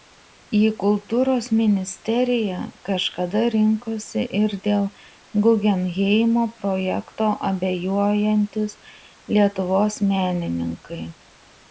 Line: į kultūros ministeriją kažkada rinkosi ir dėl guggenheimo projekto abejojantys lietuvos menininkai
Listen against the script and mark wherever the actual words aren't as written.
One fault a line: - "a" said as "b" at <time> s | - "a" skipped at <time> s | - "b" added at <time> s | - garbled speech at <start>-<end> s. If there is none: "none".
none